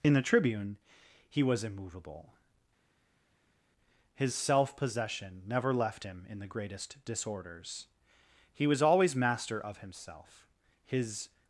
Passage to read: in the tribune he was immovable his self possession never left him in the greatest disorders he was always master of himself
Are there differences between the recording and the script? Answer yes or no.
yes